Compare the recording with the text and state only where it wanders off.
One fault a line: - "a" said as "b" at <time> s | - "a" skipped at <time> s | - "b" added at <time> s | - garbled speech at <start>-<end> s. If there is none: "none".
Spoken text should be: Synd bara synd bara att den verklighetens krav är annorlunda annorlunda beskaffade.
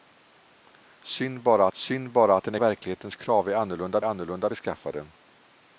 none